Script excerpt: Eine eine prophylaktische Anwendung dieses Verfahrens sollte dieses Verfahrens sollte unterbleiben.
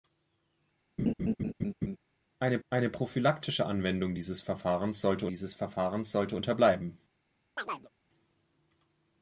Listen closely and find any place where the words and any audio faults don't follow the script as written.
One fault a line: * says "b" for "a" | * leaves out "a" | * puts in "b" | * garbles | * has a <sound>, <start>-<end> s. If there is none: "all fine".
* has a laugh, 1.0-2.0 s
* has a chirp, 7.6-7.9 s